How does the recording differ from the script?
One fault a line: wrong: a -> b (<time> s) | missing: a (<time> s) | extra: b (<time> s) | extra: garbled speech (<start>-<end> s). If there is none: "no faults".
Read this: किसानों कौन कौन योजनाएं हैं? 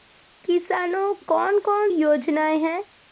no faults